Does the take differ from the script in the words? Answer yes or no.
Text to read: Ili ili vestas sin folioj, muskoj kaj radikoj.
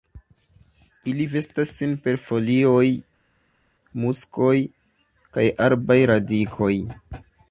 yes